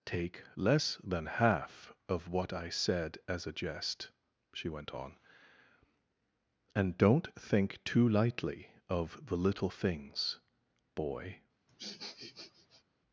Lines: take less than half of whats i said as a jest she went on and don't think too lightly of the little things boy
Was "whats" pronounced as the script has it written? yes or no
no